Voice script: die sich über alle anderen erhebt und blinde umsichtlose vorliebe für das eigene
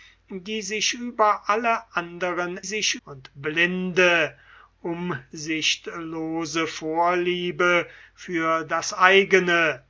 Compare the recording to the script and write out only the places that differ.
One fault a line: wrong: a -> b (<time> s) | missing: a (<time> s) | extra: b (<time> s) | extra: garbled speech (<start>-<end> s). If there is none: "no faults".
wrong: erhebt -> sich (2.6 s)